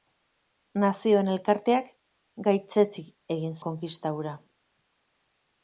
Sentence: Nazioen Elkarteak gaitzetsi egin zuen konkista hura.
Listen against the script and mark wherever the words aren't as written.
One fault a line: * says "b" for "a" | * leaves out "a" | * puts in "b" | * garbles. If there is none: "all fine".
* leaves out "zuen"